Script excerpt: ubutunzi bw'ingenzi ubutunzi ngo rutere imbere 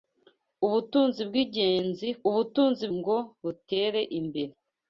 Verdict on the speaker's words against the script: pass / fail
pass